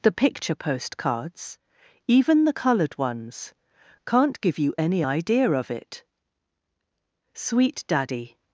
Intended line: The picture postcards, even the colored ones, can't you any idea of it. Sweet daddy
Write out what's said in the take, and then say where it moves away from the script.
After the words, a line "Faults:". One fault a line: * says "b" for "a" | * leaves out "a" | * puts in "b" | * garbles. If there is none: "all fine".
The picture postcards, even the colored ones, can't give you any idea of it. Sweet daddy
Faults:
* puts in "give"